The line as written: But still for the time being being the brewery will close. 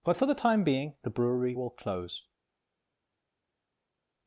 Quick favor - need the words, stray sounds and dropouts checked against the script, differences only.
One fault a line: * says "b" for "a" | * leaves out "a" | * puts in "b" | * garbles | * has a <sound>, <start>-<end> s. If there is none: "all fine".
* leaves out "still"
* leaves out "being"